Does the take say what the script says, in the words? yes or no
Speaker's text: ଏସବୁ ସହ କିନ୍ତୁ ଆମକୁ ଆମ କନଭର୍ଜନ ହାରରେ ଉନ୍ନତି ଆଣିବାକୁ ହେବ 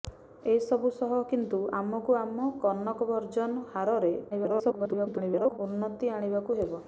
no